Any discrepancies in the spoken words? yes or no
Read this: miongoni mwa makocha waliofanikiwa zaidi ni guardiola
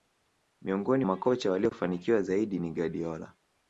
yes